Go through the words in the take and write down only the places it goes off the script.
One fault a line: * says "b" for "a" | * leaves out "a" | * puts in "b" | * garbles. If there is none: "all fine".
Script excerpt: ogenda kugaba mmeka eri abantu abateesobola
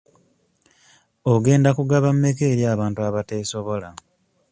all fine